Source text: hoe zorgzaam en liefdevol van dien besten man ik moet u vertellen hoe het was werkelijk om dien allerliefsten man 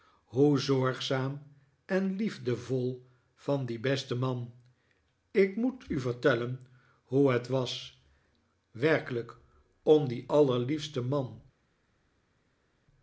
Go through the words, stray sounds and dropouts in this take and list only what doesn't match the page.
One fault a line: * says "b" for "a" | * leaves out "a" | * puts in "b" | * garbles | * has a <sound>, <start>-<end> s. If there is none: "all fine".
all fine